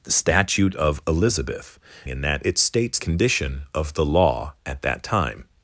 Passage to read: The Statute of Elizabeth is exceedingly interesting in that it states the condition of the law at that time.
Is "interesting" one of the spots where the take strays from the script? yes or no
yes